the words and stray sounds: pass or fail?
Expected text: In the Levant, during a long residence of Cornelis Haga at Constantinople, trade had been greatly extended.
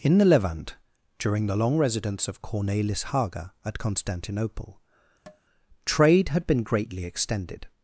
fail